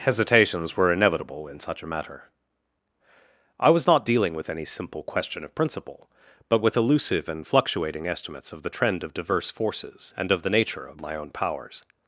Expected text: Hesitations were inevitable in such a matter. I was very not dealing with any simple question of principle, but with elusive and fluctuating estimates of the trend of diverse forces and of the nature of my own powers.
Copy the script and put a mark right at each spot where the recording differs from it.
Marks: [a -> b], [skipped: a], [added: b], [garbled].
Hesitations were inevitable in such a matter. I was [skipped: very] not dealing with any simple question of principle, but with elusive and fluctuating estimates of the trend of diverse forces and of the nature of my own powers.